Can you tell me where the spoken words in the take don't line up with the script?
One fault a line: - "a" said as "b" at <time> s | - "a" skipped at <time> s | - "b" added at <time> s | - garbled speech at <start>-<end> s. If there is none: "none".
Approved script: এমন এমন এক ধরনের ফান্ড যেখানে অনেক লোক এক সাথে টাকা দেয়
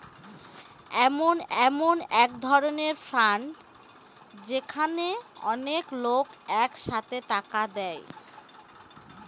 none